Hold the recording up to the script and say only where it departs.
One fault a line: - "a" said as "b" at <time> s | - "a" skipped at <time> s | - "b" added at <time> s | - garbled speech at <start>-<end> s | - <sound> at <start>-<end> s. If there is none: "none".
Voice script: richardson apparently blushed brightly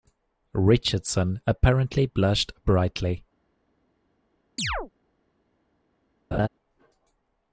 - chirp at 4.6-4.9 s
- laugh at 6.3-6.5 s